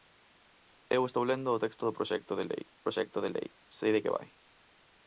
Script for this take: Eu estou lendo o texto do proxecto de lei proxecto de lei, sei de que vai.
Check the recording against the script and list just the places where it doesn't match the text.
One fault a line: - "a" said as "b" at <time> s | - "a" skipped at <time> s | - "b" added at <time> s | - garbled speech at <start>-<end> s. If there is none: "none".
none